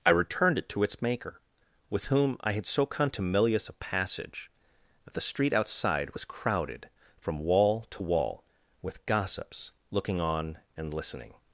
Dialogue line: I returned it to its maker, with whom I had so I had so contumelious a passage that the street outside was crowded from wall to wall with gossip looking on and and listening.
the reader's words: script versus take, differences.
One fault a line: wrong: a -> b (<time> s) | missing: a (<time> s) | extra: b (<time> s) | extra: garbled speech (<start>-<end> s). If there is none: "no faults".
missing: I had so (2.9 s)
wrong: gossip -> gossips (9.0 s)
missing: and (10.9 s)